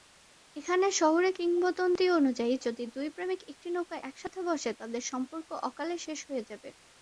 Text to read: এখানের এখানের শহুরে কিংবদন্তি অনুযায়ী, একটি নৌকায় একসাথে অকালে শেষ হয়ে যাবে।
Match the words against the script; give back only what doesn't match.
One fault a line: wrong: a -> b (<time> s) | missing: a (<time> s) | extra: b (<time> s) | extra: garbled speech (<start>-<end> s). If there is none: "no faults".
missing: এখানের (0.9 s)
extra: যদি দুই প্রেমিক (2.6 s)
extra: বসে তাদের সম্পর্ক (4.4 s)